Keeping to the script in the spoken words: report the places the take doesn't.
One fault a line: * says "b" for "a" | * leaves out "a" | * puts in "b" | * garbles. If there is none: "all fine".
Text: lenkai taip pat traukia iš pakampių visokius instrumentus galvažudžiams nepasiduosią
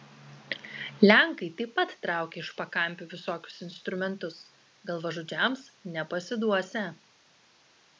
all fine